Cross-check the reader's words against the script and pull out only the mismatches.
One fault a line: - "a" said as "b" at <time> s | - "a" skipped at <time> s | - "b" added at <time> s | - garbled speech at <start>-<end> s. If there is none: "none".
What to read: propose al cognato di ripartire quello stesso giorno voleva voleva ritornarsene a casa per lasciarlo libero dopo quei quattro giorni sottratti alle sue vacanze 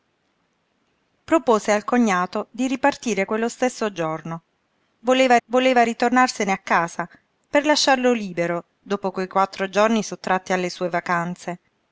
none